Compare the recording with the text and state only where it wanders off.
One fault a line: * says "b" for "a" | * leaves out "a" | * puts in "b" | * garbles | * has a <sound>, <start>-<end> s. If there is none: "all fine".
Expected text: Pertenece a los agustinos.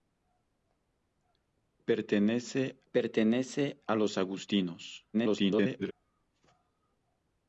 * puts in "pertenece"
* garbles